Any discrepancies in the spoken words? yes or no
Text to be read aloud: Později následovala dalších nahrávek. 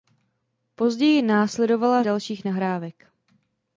no